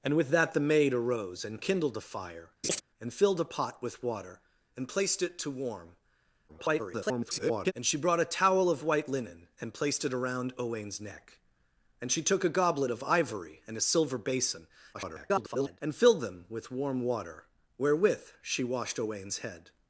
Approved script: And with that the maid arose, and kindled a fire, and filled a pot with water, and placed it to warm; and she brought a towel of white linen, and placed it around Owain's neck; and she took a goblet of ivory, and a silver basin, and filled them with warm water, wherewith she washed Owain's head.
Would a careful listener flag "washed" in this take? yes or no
no